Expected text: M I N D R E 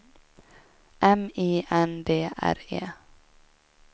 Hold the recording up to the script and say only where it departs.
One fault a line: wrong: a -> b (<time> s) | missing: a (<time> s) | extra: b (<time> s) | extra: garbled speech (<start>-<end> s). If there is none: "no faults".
no faults